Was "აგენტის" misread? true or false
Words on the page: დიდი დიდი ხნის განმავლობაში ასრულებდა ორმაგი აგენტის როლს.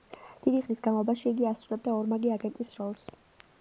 false